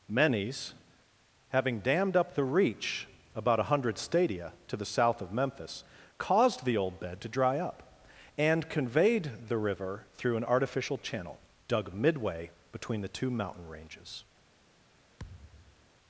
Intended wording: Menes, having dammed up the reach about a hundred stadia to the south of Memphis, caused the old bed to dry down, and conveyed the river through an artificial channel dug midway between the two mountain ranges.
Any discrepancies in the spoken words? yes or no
yes